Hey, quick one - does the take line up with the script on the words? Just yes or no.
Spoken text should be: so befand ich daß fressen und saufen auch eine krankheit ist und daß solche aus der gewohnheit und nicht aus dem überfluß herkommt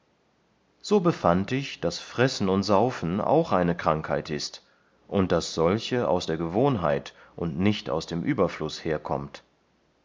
yes